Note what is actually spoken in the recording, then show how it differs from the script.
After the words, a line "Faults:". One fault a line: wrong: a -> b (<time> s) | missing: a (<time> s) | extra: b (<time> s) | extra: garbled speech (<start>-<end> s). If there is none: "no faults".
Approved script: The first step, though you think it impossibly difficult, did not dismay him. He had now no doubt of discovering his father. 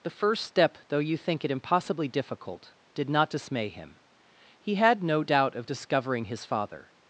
The first step, though you think it impossibly difficult, did not dismay him. He had no doubt of discovering his father.
Faults:
missing: now (5.0 s)